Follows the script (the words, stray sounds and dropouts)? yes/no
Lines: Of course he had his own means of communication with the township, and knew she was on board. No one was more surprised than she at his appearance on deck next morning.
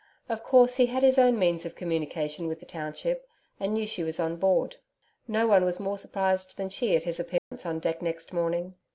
no